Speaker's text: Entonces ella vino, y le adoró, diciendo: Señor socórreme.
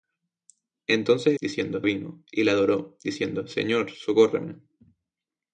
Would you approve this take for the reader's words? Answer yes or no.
no